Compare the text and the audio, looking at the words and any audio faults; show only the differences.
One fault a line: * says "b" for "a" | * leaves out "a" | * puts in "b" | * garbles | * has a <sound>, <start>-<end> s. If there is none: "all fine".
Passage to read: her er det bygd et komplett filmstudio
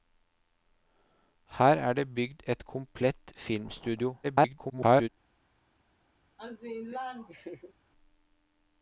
* garbles
* has a laugh, 6.4-7.7 s